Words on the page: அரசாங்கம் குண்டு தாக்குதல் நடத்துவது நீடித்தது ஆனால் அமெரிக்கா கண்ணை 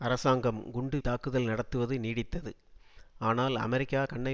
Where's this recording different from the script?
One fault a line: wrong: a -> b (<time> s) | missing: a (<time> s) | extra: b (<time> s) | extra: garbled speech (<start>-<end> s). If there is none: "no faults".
no faults